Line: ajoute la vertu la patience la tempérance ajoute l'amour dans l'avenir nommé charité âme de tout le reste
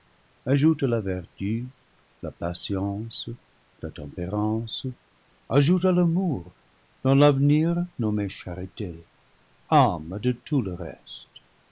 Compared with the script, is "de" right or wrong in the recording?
right